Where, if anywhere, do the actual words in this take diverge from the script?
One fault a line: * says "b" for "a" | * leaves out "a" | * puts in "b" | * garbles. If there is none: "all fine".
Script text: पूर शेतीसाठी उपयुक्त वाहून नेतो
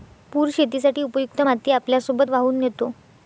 * puts in "माती आपल्यासोबत"